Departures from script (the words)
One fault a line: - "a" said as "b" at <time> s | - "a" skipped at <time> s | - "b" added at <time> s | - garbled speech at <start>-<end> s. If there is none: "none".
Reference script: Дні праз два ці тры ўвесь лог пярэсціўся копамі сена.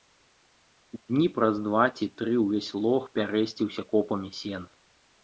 none